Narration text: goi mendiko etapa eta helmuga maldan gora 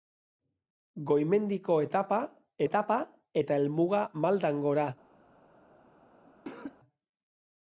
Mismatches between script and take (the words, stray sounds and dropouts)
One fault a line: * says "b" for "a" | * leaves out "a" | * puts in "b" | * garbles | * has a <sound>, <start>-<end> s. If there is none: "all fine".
* puts in "etapa"
* has a cough, 6.3-6.8 s